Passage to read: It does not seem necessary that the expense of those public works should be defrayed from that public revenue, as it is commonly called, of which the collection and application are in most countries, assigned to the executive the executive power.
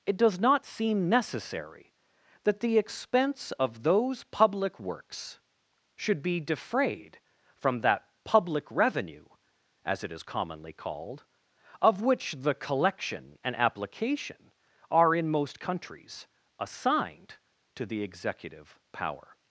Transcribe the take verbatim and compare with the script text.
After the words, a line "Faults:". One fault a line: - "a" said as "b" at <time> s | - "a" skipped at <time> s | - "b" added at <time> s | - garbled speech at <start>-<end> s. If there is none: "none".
It does not seem necessary that the expense of those public works should be defrayed from that public revenue, as it is commonly called, of which the collection and application are in most countries, assigned to the executive power.
Faults:
- "the executive" skipped at 18.8 s